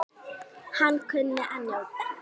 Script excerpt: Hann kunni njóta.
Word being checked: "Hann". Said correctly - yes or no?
yes